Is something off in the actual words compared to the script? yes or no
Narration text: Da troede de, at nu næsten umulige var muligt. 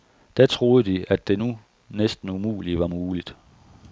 yes